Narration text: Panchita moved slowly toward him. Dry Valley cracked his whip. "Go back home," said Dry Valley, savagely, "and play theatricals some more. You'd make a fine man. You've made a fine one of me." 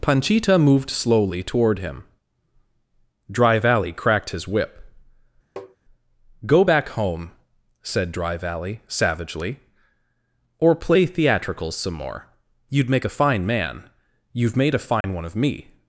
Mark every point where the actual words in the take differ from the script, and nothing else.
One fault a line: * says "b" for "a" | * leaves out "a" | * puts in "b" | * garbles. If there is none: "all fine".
* says "or" for "and"